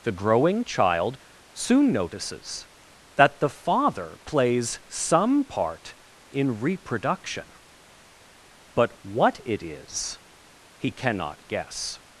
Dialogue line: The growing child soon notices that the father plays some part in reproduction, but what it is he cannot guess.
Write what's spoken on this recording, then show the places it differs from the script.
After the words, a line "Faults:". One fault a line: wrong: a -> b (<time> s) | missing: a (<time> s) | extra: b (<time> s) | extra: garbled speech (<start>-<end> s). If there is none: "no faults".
The growing child soon notices that the father plays some part in reproduction, but what it is he cannot guess.
Faults:
no faults